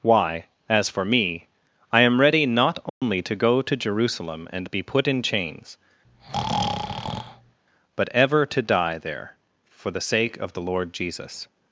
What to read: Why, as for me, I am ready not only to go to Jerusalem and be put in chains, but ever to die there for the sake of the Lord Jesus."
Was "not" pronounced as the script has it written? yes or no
yes